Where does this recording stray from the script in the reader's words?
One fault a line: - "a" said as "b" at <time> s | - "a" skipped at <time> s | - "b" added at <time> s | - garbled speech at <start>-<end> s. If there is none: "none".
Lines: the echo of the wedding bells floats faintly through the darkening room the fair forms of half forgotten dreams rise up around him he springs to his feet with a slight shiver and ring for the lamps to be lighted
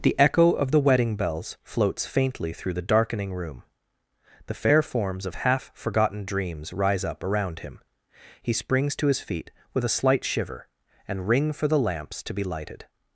none